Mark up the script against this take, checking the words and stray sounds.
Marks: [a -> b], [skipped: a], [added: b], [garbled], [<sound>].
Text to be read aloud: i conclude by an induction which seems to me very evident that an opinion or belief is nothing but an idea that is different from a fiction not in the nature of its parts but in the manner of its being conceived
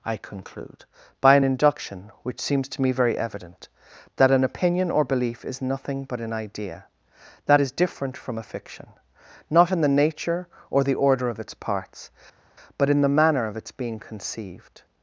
i conclude by an induction which seems to me very evident that an opinion or belief is nothing but an idea that is different from a fiction not in the nature [added: or the order] of its parts but in the manner of its being conceived